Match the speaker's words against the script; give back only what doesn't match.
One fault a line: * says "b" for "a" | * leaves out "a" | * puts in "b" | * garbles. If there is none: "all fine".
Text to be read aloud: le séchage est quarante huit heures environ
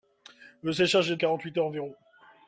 all fine